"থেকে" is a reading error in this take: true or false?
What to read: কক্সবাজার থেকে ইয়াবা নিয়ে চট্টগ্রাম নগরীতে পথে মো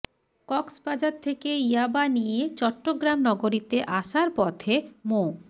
false